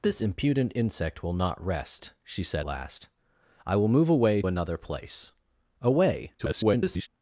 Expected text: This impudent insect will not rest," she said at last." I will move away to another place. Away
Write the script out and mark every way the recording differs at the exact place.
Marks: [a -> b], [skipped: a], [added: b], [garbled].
This impudent insect will not rest," she said [skipped: at] last." I will move away [skipped: to] another place. Away [garbled]